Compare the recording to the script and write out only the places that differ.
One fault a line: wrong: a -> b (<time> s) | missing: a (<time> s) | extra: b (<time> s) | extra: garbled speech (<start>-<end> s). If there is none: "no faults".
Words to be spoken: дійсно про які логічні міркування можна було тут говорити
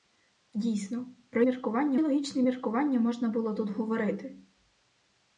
wrong: які -> міркування (1.4 s)